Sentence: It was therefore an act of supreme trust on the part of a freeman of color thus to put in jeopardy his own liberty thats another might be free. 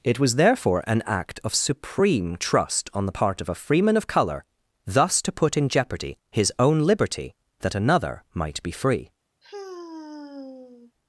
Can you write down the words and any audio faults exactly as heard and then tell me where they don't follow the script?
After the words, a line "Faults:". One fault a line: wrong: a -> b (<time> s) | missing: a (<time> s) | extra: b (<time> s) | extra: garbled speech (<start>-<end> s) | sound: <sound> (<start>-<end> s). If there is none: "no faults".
It was therefore an act of supreme trust on the part of a freeman of color thus to put in jeopardy his own liberty that another might be free.
Faults:
wrong: thats -> that (7.6 s)
sound: sigh (9.4-10.9 s)